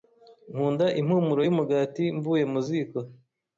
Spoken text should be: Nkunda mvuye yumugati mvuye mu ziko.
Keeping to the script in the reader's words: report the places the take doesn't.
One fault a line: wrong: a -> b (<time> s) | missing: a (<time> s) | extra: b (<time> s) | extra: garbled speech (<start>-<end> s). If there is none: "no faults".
wrong: mvuye -> impumuro (1.0 s)